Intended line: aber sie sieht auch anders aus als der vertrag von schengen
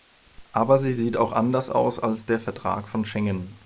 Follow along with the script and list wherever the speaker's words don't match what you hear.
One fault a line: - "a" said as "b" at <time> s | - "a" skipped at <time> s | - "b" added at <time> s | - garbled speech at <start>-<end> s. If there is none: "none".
none